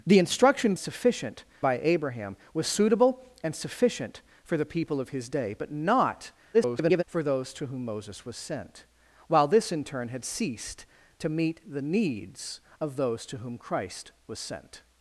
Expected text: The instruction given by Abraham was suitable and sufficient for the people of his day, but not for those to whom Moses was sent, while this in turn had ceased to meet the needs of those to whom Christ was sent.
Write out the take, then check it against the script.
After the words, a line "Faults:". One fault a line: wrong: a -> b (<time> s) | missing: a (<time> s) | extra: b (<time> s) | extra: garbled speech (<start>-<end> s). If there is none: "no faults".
The instruction sufficient by Abraham was suitable and sufficient for the people of his day, but not [garbled] for those to whom Moses was sent, while this in turn had ceased to meet the needs of those to whom Christ was sent.
Faults:
wrong: given -> sufficient (0.8 s)
extra: garbled speech (6.5-7.0 s)